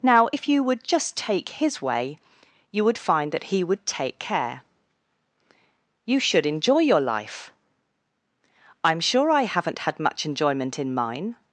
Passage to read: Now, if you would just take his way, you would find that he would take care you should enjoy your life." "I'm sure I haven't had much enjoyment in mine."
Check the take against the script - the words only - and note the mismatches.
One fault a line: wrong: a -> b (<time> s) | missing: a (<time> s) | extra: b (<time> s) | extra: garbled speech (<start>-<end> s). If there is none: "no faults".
no faults